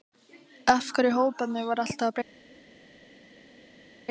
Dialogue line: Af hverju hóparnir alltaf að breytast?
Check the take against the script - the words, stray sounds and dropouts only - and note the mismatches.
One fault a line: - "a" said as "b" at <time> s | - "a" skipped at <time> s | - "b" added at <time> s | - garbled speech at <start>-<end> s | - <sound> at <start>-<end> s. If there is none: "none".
- "voru" added at 1.7 s